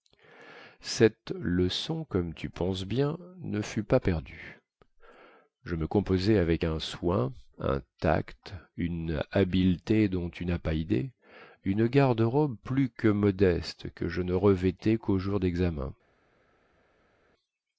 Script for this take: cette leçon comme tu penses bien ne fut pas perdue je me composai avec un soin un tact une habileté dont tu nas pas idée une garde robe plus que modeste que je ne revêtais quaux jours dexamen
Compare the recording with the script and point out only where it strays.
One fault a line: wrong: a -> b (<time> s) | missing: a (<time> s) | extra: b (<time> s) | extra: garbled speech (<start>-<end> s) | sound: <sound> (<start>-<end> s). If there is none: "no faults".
no faults